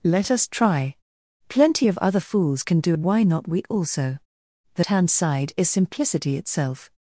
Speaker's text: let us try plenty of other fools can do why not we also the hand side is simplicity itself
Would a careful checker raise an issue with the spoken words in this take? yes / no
no